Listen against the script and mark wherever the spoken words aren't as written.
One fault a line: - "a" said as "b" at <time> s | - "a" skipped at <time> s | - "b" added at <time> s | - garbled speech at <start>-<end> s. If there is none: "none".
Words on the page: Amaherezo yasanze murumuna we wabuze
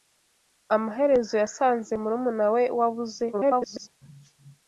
- garbled speech at 3.3-3.9 s